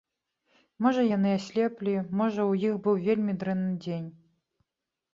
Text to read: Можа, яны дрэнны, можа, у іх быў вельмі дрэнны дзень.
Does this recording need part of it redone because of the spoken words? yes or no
yes